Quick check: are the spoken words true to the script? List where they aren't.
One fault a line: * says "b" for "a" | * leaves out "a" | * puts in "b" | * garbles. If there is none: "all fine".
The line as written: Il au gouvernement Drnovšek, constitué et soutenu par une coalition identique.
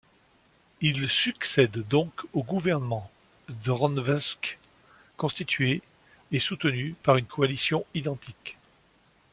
* puts in "succède donc"